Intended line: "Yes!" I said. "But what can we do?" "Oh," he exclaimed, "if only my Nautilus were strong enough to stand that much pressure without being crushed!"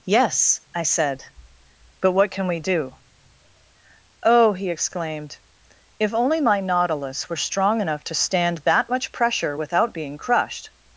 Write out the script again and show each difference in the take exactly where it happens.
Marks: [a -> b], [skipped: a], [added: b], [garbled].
"Yes!" I said. "But what can we do?" "Oh," he exclaimed, "if only my Nautilus were strong enough to stand that much pressure without being crushed!"